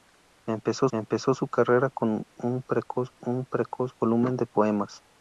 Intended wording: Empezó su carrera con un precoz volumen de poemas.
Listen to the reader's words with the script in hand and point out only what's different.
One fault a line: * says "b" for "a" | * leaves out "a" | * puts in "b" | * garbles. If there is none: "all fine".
* puts in "empezó"
* puts in "un precoz"